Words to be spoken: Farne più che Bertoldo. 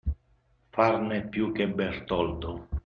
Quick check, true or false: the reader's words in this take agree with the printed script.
true